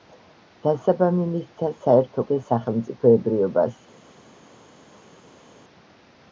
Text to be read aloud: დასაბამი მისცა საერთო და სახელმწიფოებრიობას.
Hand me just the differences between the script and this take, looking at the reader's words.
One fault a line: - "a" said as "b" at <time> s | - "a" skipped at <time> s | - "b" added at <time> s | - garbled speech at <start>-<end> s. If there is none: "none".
none